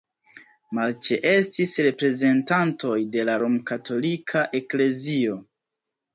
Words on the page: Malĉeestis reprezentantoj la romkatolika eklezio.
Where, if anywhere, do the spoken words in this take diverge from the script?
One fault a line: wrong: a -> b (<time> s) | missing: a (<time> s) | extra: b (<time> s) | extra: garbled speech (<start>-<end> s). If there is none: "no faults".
extra: de (3.2 s)